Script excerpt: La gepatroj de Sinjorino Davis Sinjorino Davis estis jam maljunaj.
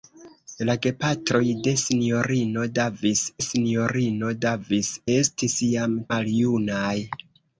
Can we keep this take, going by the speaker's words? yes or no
yes